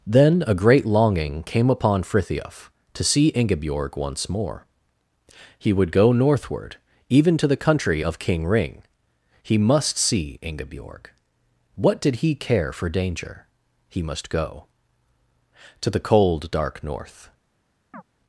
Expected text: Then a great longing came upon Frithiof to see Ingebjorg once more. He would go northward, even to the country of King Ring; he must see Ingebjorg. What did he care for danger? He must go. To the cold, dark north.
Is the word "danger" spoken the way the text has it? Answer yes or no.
yes